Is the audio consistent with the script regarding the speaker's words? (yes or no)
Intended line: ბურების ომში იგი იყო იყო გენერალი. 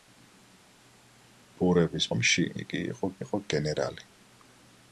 yes